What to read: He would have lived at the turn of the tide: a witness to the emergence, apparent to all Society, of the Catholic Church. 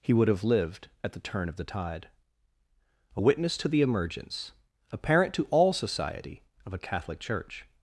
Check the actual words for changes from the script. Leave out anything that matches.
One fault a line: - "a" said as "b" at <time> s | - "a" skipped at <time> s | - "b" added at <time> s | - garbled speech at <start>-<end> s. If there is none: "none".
- "the" said as "a" at 6.7 s